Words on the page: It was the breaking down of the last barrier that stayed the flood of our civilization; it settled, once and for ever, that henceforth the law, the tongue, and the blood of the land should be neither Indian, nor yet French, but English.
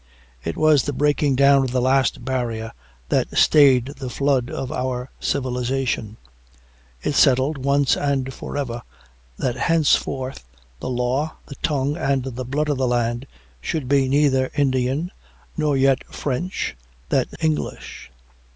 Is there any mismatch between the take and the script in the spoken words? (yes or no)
yes